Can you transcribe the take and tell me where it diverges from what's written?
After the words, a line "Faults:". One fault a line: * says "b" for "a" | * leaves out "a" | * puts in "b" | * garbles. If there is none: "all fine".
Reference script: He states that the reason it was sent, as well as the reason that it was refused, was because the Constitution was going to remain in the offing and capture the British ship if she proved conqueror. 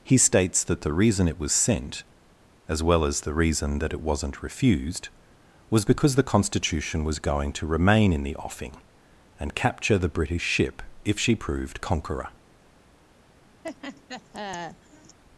He states that the reason it was sent, as well as the reason that it wasn't refused, was because the Constitution was going to remain in the offing and capture the British ship if she proved conqueror.
Faults:
* says "wasn't" for "was"